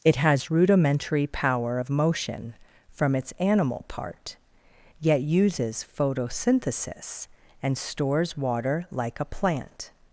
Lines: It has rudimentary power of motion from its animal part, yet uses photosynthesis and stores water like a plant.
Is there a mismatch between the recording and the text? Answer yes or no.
no